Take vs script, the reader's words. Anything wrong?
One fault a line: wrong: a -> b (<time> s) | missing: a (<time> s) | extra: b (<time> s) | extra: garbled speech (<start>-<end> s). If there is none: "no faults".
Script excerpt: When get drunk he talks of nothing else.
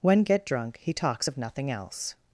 no faults